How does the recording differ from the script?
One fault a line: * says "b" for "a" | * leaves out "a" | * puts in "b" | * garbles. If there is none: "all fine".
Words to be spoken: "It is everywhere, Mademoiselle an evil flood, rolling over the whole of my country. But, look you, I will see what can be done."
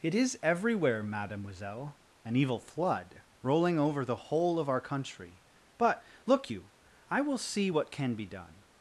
* says "our" for "my"